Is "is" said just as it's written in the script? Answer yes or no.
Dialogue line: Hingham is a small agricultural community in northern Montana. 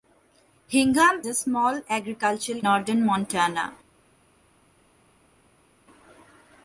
no